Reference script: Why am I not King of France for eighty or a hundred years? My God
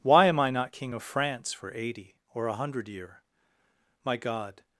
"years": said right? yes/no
no